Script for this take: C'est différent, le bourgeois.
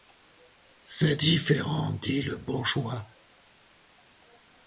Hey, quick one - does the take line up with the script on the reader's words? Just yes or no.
no